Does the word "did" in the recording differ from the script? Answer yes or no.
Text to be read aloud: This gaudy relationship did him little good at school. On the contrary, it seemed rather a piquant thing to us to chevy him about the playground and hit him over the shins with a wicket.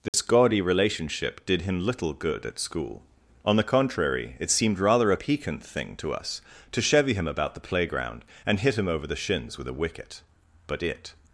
no